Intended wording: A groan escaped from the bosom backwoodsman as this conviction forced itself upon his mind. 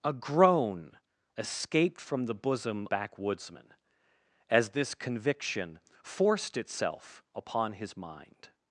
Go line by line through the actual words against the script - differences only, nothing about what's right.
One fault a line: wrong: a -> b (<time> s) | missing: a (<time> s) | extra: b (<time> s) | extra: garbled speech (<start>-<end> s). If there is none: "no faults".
no faults